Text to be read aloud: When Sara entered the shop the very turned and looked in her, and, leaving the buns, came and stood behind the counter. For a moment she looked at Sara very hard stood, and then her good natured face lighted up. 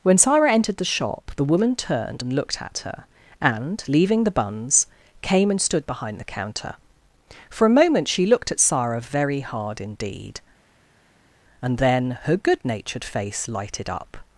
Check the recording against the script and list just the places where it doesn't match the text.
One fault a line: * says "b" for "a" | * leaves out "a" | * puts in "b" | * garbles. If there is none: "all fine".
* says "woman" for "very"
* says "at" for "in"
* says "indeed" for "stood"